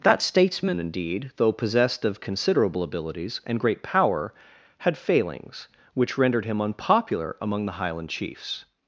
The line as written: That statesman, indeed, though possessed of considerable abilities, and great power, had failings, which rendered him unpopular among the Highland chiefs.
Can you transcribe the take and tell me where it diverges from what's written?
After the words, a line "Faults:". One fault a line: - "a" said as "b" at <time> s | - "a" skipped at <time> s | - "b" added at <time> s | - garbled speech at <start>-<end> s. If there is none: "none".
That statesman, indeed, though possessed of considerable abilities, and great power, had failings, which rendered him unpopular among the Highland chiefs.
Faults:
none